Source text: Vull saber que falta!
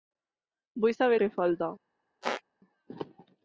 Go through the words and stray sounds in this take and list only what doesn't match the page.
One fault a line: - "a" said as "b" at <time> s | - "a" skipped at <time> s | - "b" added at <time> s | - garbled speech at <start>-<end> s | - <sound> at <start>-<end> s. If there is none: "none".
- squeak at 2.2-2.4 s